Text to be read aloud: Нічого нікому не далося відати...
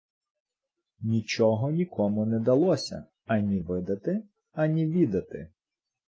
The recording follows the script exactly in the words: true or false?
false